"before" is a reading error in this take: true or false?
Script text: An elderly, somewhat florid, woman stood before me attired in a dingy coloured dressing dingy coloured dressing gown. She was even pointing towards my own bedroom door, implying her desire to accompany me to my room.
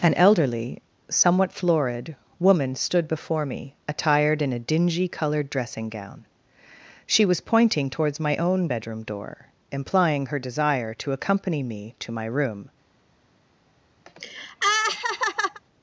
false